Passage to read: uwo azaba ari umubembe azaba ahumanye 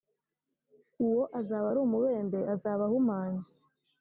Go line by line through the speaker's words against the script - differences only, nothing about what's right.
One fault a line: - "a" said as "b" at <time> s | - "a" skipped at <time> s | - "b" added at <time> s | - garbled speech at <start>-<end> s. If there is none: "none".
none